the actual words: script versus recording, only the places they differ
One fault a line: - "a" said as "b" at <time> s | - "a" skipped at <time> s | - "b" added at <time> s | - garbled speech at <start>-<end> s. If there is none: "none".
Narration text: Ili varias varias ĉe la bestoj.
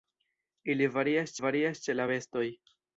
none